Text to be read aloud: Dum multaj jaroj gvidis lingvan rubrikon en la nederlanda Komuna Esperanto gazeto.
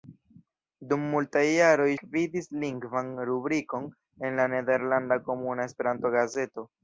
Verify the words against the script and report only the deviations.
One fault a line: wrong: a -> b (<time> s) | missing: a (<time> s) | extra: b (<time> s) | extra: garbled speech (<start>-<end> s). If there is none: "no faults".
no faults